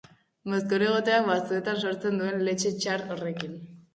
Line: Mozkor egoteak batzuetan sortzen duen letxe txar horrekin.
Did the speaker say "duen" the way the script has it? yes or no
yes